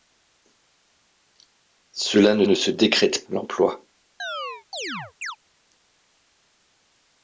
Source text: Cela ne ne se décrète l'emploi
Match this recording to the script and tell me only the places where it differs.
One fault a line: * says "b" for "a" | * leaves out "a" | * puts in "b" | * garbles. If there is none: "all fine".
all fine